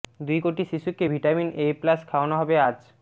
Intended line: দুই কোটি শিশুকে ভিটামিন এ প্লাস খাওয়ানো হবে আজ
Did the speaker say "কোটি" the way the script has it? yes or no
yes